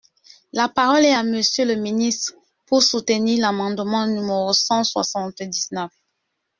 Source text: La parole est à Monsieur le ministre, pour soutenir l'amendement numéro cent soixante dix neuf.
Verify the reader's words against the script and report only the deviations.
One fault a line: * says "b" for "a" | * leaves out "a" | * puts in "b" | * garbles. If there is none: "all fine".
all fine